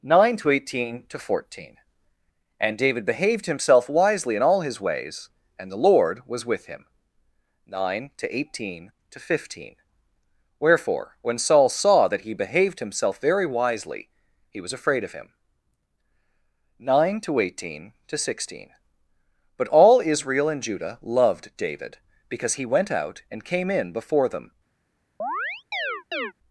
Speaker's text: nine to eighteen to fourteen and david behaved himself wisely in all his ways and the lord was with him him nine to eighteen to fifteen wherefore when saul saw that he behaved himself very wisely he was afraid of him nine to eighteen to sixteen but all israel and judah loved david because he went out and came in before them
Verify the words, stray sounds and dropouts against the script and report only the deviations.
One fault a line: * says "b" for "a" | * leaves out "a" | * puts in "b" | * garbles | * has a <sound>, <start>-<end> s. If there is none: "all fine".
* leaves out "him"
* has a chirp, 25.2-26.3 s